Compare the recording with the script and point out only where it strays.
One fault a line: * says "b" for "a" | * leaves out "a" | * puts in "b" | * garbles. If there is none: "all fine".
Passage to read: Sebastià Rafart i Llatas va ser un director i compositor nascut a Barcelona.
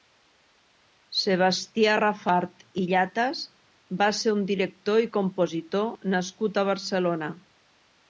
all fine